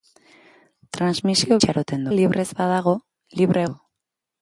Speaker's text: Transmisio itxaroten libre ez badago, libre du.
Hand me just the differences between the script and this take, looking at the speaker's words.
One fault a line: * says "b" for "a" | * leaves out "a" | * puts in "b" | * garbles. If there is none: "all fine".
all fine